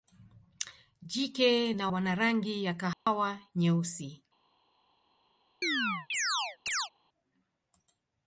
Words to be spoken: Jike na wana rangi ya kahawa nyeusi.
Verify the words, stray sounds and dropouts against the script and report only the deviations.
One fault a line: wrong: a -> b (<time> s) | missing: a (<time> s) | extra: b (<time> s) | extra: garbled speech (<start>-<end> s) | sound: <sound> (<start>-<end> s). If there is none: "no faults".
sound: dropout (2.9-3.1 s)
sound: chirp (5.6-6.9 s)